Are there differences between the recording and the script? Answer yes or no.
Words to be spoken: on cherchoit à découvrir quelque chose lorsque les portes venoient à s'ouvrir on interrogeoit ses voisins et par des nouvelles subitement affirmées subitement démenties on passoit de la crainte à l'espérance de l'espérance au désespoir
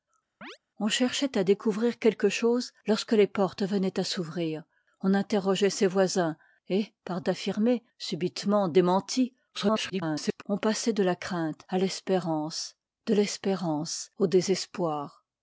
yes